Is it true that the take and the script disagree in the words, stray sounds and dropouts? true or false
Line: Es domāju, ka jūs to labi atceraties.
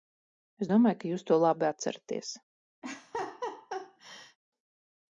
true